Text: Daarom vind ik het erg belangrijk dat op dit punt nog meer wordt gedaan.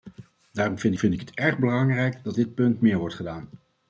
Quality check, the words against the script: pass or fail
fail